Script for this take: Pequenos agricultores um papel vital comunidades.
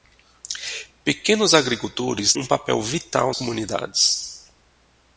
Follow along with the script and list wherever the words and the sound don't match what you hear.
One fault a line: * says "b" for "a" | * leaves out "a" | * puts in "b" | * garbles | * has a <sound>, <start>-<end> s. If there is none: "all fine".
all fine